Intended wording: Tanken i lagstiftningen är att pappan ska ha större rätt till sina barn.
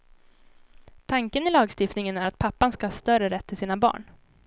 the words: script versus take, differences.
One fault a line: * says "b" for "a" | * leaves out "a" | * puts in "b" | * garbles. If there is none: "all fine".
all fine